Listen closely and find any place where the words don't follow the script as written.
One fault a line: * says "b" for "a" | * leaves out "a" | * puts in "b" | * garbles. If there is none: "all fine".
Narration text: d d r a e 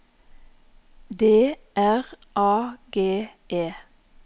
* leaves out "d"
* puts in "g"